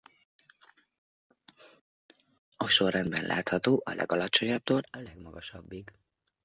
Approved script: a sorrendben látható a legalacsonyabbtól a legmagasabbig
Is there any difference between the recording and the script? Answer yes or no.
no